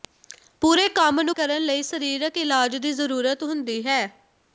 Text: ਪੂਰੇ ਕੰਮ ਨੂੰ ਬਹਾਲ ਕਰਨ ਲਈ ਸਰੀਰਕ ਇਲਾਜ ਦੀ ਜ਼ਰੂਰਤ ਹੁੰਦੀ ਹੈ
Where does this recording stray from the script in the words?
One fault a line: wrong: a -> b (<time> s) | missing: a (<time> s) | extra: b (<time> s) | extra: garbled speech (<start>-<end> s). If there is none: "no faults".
missing: ਬਹਾਲ (1.4 s)